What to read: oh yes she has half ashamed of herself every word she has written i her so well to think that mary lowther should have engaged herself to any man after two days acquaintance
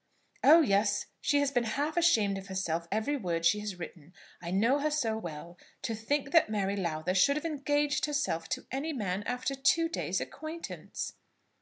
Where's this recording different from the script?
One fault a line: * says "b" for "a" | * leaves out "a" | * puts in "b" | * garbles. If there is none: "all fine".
* puts in "been"
* puts in "know"